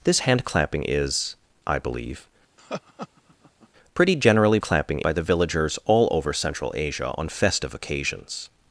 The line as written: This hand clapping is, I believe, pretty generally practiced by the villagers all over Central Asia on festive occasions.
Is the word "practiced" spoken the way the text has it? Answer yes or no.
no